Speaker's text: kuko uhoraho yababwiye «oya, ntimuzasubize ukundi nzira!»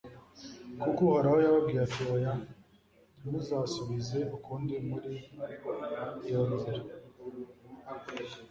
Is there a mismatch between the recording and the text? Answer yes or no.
yes